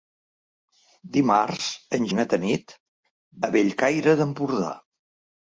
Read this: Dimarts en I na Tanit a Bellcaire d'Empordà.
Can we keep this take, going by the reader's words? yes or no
yes